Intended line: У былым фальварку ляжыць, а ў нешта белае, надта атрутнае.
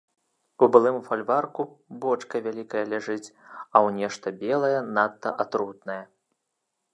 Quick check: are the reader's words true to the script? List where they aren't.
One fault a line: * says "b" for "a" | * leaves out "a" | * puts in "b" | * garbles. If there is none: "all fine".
* puts in "бочка вялікая"